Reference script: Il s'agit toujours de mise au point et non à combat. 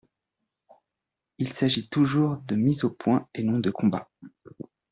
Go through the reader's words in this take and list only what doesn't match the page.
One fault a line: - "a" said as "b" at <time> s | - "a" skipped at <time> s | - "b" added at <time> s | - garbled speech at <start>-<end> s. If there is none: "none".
- "à" said as "de" at 3.6 s